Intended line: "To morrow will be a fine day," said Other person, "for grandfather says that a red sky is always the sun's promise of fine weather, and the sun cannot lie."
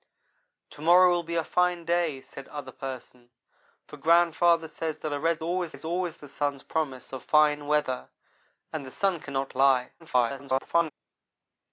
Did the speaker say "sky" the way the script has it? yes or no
no